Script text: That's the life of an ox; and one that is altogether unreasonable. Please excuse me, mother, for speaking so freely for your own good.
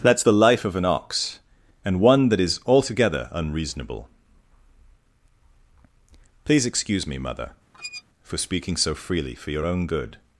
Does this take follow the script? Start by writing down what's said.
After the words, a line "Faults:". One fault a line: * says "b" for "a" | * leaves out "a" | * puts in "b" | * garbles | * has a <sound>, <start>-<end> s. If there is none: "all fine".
That's the life of an ox; and one that is altogether unreasonable. Please excuse me, mother, for speaking so freely for your own good.
Faults:
* has a squeak, 7.7-8.0 s